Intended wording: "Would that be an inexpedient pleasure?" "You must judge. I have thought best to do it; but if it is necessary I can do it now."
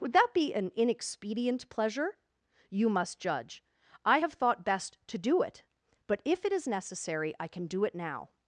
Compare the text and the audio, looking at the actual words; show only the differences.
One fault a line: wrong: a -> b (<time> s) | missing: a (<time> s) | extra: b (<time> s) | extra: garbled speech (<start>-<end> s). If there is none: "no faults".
no faults